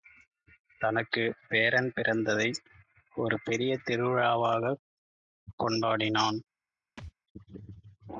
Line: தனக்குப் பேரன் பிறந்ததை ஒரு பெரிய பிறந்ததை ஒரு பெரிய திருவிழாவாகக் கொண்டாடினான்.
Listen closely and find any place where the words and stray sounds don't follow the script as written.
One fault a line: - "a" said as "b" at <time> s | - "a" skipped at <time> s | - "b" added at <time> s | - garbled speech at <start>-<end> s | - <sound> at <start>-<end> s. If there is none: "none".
- "பிறந்ததை ஒரு பெரிய" skipped at 3.8 s
- thud at 7.0-7.1 s